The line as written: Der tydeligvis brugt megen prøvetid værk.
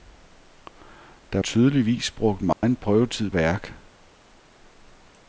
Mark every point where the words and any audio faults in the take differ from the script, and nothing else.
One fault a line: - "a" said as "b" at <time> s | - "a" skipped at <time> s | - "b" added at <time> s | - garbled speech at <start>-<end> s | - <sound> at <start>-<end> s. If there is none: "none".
- dropout at 2.5-2.6 s